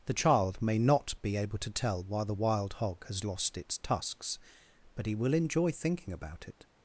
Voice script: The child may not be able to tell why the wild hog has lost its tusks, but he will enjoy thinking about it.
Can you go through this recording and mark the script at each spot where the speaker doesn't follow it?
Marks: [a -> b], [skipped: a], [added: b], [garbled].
The child may not be able to tell why the wild hog has lost its tusks, but he will enjoy thinking about it.